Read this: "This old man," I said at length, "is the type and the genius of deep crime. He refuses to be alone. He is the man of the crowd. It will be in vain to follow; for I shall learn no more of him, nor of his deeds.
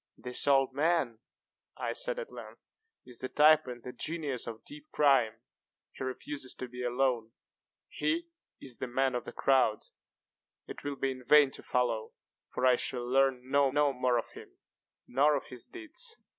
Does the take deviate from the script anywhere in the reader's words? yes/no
yes